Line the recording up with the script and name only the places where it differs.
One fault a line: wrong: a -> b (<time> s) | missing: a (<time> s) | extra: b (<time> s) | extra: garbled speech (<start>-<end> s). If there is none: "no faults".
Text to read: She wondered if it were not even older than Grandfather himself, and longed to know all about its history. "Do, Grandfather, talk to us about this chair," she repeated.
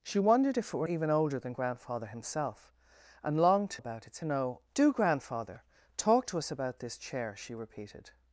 missing: not (0.9 s)
missing: know all (3.8 s)
wrong: history -> know (4.2 s)